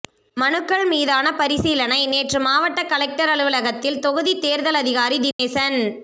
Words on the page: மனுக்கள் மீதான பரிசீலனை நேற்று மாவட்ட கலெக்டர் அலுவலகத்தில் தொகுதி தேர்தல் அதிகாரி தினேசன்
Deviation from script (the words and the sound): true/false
true